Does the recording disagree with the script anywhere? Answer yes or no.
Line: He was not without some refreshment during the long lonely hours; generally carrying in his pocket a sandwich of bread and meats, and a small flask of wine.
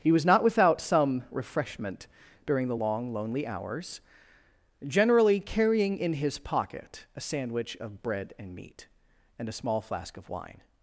yes